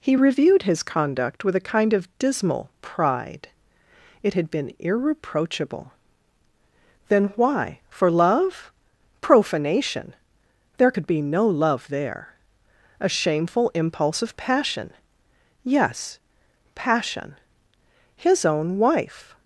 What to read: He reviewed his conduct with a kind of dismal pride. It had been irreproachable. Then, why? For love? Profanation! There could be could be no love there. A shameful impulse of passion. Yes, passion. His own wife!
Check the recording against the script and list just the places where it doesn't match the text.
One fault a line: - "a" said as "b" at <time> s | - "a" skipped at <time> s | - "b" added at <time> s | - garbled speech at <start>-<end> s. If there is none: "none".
- "could be" skipped at 11.2 s